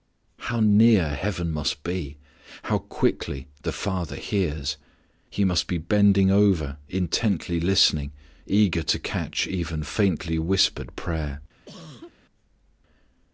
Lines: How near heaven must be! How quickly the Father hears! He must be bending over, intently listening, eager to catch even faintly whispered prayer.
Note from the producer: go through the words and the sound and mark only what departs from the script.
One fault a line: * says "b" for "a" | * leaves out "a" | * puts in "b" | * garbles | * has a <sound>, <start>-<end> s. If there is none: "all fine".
* has a cough, 11.7-12.2 s